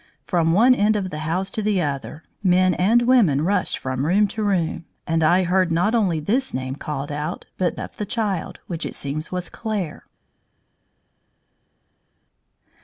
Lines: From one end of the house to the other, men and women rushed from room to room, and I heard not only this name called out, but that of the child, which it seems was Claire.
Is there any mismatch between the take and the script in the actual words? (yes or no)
yes